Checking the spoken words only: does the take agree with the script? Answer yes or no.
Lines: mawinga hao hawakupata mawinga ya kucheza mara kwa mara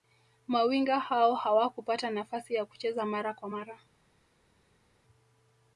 no